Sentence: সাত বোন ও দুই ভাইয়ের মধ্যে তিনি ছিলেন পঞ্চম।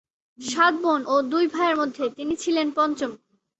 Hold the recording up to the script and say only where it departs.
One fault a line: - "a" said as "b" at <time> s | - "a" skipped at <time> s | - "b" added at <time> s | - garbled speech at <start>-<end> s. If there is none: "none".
none